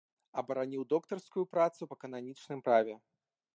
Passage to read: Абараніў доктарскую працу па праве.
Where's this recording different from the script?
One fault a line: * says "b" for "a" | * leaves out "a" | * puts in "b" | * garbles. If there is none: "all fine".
* puts in "кананічным"